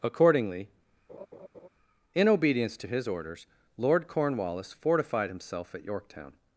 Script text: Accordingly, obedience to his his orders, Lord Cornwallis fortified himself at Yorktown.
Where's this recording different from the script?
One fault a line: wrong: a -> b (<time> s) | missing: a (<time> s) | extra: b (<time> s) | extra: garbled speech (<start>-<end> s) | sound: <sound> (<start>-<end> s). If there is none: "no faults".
sound: laugh (1.1-1.7 s)
extra: in (2.1 s)
missing: his (3.1 s)